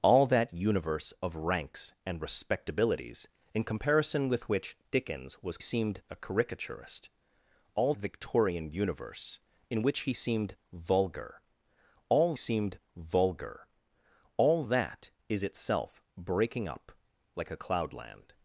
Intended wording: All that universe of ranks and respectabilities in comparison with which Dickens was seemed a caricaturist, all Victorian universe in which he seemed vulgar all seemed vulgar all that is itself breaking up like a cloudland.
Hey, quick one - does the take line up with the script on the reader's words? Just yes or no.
yes